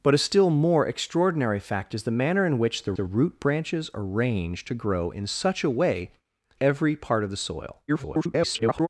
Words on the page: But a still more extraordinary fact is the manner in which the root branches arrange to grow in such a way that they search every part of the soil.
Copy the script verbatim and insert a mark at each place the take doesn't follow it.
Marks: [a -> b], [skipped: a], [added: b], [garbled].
But a still more extraordinary fact is the manner in which the [added: the] root branches arrange to grow in such a way [skipped: that they search] every part of the soil. [garbled]